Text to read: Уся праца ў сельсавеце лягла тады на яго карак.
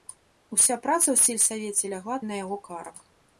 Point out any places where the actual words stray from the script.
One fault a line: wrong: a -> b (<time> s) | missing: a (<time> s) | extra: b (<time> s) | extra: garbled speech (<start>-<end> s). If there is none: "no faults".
missing: тады (2.2 s)